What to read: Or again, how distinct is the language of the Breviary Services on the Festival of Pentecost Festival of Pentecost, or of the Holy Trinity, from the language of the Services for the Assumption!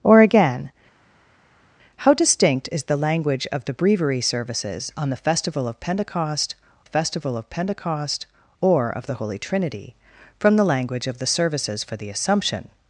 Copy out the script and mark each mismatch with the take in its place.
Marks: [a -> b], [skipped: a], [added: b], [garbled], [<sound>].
Or again, how distinct is the language of the Breviary Services on the Festival of Pentecost Festival of Pentecost, or of the Holy Trinity, from the language of the Services for the Assumption!